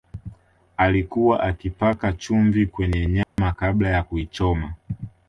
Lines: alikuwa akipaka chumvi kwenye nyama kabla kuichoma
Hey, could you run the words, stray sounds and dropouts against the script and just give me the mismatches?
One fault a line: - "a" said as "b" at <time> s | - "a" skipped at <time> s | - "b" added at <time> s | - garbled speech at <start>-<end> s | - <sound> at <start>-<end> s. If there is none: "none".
- dropout at 3.2-3.4 s
- "ya" added at 3.9 s